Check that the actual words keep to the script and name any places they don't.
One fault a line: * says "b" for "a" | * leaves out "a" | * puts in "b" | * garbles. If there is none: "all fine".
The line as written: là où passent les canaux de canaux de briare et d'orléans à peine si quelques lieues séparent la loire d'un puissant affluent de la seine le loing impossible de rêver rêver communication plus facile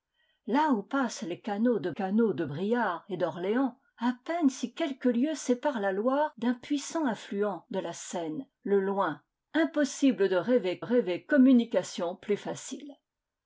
all fine